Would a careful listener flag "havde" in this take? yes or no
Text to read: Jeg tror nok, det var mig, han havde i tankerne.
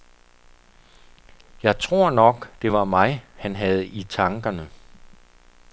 no